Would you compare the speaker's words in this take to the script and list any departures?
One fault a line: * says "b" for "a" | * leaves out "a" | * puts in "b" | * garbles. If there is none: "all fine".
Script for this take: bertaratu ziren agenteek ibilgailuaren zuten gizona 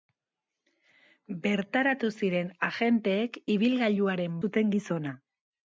all fine